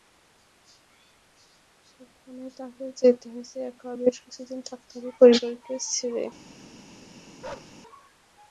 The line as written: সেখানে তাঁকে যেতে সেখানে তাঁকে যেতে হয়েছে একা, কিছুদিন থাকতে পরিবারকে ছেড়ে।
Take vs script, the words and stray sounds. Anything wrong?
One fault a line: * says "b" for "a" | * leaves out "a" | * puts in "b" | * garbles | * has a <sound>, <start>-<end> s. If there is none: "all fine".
* leaves out "সেখানে তাঁকে যেতে"
* puts in "বেশ"
* puts in "হবে"
* has a bark, 7.4-7.8 s